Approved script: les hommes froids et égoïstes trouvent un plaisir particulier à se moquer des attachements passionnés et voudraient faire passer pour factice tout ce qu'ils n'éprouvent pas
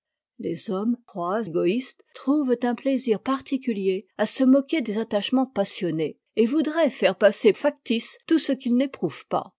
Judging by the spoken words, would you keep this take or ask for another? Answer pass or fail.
fail